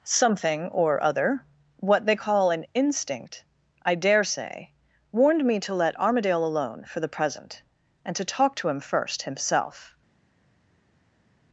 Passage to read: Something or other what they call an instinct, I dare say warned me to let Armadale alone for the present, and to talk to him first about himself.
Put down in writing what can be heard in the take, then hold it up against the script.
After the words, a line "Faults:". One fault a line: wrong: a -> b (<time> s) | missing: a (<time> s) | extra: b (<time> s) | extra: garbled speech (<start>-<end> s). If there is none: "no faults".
Something or other what they call an instinct, I dare say warned me to let Armadale alone for the present, and to talk to him first himself.
Faults:
missing: about (9.2 s)